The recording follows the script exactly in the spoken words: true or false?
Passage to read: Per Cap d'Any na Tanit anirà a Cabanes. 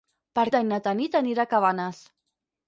false